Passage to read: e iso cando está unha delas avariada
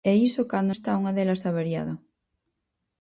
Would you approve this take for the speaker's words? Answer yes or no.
yes